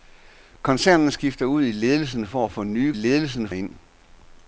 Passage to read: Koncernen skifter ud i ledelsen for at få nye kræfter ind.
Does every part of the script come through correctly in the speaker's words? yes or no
no